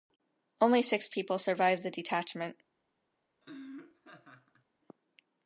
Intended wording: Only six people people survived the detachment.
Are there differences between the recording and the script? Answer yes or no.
yes